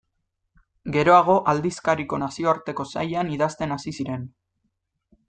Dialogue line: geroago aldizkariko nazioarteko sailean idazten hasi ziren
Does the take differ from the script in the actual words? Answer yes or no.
no